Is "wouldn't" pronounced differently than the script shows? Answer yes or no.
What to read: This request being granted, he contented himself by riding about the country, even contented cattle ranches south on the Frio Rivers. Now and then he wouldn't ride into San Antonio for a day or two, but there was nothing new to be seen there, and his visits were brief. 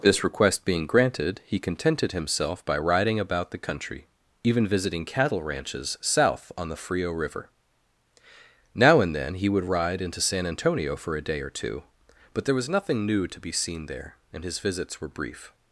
yes